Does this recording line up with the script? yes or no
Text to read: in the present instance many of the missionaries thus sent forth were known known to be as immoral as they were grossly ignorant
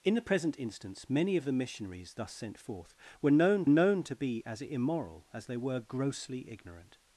yes